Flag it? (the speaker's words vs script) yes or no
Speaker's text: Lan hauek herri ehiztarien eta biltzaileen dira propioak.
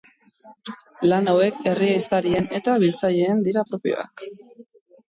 no